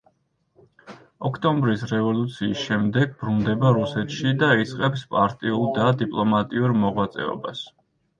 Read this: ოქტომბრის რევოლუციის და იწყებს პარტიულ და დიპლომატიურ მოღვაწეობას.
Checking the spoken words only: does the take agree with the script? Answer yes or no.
no